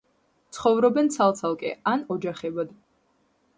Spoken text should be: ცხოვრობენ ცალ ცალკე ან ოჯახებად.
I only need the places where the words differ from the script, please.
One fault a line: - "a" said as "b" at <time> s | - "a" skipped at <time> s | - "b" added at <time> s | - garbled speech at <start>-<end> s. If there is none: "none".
none